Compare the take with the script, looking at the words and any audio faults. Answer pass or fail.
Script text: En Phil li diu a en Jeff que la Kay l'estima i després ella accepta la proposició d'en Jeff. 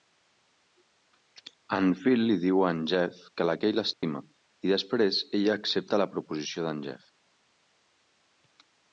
fail